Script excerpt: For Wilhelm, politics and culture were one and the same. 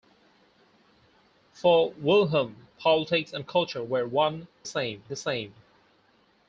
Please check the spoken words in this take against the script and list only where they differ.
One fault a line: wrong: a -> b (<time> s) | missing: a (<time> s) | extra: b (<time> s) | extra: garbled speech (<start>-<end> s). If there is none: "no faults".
wrong: and -> same (4.7 s)